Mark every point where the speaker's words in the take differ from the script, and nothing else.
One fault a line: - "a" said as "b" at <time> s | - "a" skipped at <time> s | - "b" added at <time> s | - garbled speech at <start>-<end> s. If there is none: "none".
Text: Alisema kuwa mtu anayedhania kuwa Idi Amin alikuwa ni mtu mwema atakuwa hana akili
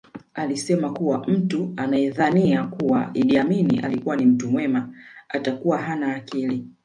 none